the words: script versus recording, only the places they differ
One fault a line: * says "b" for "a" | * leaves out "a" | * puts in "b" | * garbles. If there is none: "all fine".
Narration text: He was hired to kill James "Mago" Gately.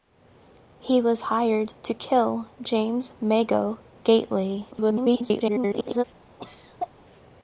* garbles